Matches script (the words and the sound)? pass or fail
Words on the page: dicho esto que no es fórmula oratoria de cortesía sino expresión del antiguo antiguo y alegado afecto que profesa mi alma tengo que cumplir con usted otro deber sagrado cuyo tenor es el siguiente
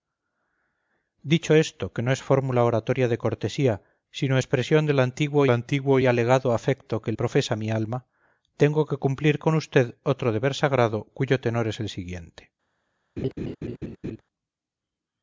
fail